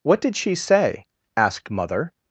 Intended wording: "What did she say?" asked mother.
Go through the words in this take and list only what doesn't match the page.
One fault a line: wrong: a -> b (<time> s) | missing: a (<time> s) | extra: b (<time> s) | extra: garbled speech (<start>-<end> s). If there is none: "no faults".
no faults